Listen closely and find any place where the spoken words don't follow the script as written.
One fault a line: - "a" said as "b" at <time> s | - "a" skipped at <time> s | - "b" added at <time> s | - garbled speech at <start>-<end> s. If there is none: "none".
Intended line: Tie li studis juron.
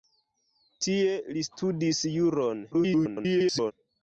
- garbled speech at 2.7-3.7 s